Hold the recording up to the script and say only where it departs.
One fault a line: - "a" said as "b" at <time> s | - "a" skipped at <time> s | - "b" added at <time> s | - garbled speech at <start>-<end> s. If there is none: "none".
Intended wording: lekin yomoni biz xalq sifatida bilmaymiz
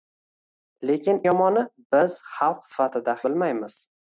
none